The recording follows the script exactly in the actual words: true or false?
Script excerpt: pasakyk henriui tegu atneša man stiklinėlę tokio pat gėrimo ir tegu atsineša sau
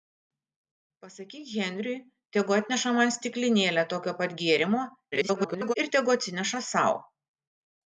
false